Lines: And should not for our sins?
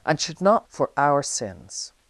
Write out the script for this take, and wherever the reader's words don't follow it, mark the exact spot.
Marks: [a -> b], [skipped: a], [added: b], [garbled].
And should not for our sins?